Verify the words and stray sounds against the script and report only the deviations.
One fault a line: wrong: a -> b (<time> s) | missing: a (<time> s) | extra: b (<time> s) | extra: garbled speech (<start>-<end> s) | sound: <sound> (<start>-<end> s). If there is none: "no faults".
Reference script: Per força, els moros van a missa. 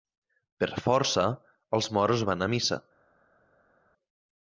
no faults